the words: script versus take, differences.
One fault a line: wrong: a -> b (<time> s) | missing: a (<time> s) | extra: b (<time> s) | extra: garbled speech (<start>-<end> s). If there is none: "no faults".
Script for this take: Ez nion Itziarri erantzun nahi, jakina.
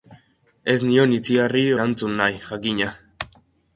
no faults